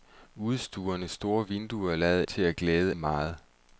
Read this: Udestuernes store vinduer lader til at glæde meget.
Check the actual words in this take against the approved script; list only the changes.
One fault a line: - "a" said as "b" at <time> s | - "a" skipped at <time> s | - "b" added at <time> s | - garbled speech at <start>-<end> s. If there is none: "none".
none